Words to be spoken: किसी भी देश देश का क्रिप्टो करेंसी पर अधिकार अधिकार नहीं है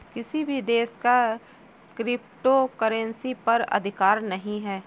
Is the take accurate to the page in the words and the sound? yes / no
no